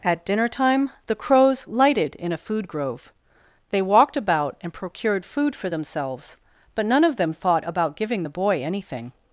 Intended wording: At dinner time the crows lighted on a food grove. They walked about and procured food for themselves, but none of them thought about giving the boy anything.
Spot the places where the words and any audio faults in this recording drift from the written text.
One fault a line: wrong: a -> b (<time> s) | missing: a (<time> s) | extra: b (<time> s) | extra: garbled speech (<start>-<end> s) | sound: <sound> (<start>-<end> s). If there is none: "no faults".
wrong: on -> in (2.1 s)